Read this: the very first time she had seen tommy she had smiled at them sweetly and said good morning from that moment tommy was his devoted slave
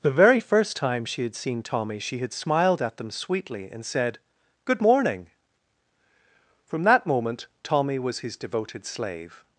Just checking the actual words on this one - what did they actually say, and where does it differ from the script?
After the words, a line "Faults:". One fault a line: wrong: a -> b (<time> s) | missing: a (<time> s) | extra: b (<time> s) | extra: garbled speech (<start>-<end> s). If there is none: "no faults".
the very first time she had seen tommy she had smiled at them sweetly and said good morning from that moment tommy was his devoted slave
Faults:
no faults